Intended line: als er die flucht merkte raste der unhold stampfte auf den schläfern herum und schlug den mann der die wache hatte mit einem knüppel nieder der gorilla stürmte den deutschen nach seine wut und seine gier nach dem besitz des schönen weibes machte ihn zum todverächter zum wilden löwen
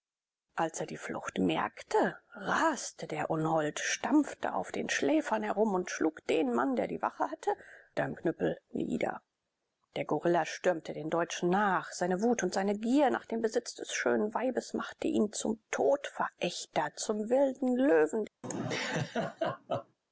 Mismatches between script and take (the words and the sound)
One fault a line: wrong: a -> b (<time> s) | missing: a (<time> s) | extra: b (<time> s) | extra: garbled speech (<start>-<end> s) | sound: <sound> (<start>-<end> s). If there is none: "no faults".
missing: mit (7.5 s)
sound: laugh (18.4-20.0 s)